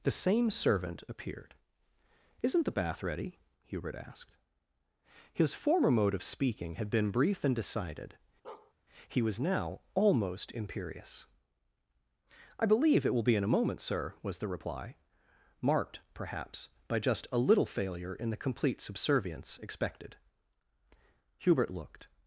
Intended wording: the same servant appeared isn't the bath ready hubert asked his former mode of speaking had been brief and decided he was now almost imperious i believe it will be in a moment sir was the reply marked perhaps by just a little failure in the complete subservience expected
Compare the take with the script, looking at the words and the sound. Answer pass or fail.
fail